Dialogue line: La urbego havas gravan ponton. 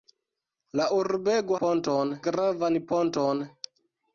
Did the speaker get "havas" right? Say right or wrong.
wrong